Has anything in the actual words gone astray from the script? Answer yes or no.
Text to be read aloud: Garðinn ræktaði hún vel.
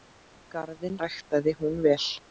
no